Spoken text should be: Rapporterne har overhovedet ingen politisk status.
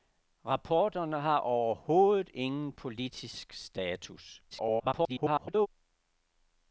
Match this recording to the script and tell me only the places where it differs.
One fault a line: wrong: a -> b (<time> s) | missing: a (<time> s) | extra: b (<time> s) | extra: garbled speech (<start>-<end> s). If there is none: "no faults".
extra: garbled speech (4.5-5.7 s)